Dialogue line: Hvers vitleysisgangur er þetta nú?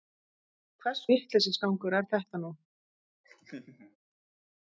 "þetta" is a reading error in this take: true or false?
false